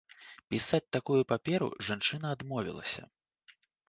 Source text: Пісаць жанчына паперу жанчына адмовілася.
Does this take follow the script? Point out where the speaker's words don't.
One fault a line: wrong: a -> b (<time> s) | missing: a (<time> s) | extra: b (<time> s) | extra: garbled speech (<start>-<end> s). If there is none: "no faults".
wrong: жанчына -> такую (0.9 s)